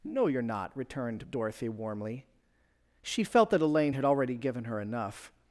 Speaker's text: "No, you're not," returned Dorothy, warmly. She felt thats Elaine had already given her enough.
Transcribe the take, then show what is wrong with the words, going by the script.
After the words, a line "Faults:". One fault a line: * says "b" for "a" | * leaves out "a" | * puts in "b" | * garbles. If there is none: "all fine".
"No, you're not," returned Dorothy, warmly. She felt that Elaine had already given her enough.
Faults:
* says "that" for "thats"